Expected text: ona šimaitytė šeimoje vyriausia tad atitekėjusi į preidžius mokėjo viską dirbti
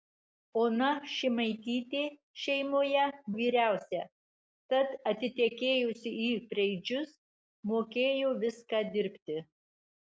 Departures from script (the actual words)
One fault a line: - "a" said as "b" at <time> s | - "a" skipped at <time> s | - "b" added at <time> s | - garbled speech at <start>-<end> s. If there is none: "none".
none